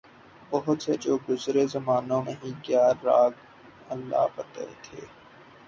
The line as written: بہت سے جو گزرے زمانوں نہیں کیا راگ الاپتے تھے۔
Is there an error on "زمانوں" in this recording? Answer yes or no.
no